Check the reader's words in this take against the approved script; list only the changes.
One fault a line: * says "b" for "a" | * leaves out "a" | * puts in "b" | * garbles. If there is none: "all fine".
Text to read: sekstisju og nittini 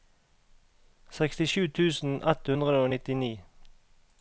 * puts in "tusen ett hundre"